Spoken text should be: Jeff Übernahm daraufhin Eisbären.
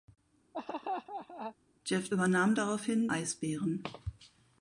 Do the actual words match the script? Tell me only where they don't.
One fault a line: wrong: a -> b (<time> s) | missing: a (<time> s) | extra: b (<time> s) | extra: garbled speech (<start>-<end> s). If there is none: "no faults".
no faults